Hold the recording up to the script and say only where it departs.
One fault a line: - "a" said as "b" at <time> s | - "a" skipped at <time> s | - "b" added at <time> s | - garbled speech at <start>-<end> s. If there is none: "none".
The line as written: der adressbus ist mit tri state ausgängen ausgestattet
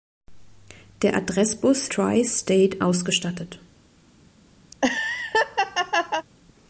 - "ist mit" skipped at 1.9 s
- "ausgängen" skipped at 2.8 s